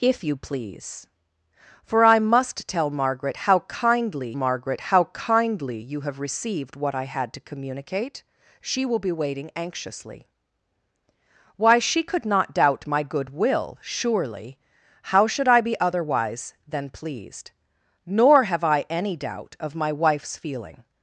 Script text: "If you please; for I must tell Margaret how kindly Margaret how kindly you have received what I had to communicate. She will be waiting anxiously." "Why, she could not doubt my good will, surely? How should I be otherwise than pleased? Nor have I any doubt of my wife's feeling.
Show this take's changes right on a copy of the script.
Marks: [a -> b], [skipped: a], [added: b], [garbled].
"If you please; for I must tell Margaret how kindly Margaret how kindly you have received what I had to communicate. She will be waiting anxiously." "Why, she could not doubt my good will, surely? How should I be otherwise than pleased? Nor have I any doubt of my wife's feeling.